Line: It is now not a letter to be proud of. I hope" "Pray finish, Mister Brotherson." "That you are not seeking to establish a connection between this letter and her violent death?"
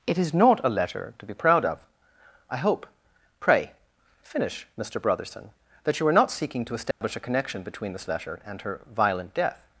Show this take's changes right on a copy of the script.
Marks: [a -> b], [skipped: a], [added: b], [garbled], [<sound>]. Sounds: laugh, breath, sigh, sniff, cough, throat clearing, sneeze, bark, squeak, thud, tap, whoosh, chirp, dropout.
It is [skipped: now] not a letter to be proud of. I hope" "Pray finish, Mister Brotherson." "That you are not seeking to establish [dropout] a connection between this letter and her violent death?"